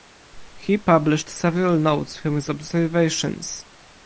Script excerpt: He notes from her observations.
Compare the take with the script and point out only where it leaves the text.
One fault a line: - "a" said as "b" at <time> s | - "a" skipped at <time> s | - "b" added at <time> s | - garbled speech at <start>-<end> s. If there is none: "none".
- "published several" added at 0.8 s
- "her" said as "his" at 2.3 s